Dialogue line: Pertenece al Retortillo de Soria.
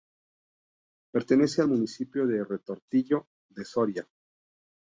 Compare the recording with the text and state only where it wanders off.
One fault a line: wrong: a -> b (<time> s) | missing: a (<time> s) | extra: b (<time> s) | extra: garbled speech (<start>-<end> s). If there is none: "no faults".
extra: municipio de (1.7 s)